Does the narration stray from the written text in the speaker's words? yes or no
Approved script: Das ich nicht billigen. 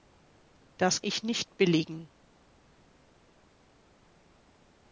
no